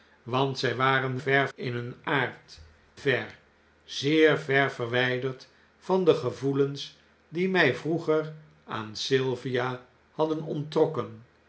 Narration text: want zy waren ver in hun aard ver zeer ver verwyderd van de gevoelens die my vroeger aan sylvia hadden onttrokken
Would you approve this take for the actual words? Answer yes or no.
yes